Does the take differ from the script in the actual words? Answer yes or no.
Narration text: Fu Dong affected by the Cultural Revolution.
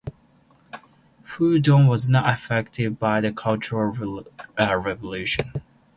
yes